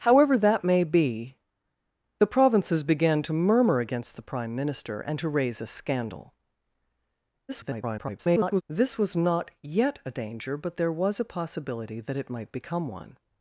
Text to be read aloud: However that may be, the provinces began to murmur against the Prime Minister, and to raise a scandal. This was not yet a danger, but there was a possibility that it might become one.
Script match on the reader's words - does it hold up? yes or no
no